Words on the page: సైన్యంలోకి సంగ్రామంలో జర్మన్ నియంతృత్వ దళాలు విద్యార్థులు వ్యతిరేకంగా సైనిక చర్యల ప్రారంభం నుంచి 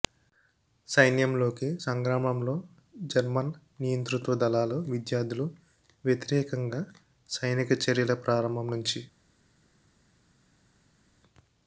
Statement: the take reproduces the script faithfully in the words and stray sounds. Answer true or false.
true